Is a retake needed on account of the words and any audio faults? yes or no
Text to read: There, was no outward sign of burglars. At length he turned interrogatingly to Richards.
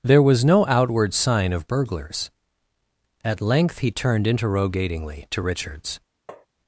yes